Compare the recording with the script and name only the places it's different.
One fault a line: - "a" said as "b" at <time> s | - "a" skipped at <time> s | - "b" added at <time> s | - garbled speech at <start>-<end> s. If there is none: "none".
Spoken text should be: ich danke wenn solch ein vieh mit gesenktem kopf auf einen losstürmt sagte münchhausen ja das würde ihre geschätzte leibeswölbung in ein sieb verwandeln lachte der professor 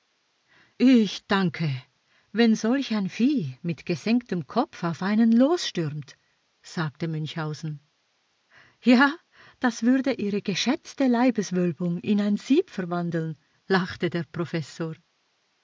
none